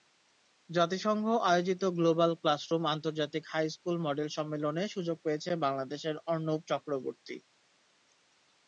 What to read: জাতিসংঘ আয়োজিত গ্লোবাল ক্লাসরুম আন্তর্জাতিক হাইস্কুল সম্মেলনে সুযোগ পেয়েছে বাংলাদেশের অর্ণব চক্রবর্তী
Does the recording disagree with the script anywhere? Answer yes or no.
yes